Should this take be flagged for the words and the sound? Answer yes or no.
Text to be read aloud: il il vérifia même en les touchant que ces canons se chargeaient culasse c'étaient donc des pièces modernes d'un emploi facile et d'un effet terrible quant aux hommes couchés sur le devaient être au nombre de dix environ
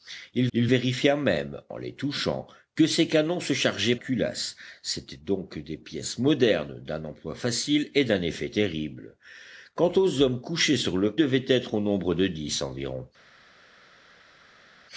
no